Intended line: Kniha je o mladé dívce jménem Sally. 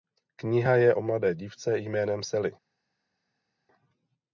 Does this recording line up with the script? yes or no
yes